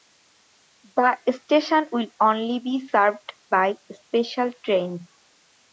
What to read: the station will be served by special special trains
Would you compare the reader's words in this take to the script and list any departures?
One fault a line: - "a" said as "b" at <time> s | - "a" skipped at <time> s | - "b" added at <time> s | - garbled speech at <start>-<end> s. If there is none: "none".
- "only" added at 2.2 s
- "special" skipped at 4.5 s